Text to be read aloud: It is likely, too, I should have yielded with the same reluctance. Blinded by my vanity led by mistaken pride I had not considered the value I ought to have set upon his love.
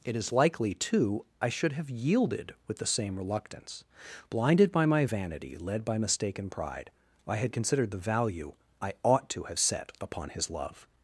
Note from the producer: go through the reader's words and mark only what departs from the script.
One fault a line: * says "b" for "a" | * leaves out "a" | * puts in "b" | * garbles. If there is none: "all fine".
* leaves out "not"